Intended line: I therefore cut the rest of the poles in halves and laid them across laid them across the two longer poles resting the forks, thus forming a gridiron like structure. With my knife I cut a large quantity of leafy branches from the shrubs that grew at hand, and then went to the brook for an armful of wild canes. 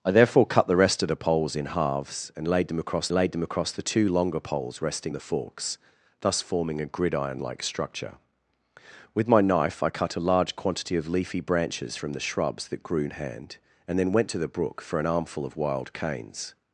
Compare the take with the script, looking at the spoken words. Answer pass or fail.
pass